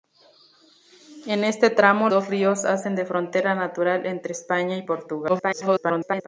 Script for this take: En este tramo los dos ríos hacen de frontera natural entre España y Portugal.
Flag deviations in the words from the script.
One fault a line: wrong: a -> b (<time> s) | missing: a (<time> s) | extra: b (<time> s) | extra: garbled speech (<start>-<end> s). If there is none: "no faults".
missing: los (2.1 s)
extra: garbled speech (5.3-6.3 s)